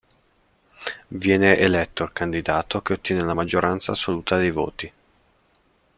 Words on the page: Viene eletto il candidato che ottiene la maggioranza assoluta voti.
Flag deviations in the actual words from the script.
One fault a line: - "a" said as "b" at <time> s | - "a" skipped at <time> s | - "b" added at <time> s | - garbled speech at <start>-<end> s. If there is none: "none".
- "dei" added at 4.4 s